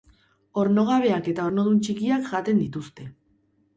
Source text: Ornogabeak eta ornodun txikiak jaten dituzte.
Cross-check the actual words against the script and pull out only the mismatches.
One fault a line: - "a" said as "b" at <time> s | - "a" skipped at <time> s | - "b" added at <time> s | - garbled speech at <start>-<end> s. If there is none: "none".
none